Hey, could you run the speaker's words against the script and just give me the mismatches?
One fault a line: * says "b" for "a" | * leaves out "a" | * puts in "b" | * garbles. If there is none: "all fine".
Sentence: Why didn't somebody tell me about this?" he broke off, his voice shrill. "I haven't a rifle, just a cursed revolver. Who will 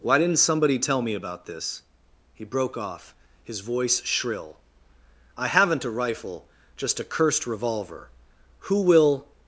all fine